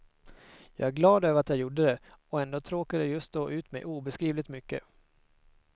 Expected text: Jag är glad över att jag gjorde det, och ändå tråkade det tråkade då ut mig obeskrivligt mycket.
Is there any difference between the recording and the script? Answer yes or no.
yes